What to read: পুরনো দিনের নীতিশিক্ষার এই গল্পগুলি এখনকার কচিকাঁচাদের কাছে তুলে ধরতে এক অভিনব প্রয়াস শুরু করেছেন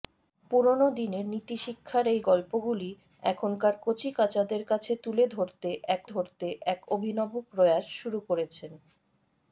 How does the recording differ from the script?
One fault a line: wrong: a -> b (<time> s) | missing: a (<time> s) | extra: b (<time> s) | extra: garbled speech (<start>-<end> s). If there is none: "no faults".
extra: ধরতে এক (6.1 s)